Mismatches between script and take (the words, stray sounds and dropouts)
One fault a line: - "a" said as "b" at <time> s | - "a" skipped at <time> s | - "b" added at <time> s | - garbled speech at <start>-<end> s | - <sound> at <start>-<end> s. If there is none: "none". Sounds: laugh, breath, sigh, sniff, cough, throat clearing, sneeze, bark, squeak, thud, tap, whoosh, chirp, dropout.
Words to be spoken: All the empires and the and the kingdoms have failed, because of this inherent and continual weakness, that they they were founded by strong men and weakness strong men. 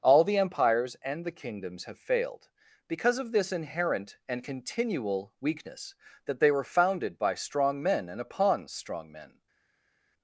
- "and the" skipped at 1.4 s
- "they" skipped at 6.5 s
- "weakness" said as "upon" at 8.2 s